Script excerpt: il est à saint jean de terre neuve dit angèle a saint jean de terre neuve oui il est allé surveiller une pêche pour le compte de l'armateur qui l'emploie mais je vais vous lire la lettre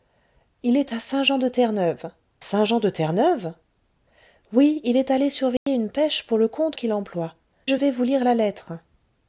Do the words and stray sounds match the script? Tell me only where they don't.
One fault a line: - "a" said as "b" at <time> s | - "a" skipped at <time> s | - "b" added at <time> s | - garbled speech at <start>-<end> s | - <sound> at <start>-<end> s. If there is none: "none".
- "dit angèle a" skipped at 2.1 s
- dropout at 5.6-5.7 s
- "de l'armateur" skipped at 6.8 s
- "mais" skipped at 7.4 s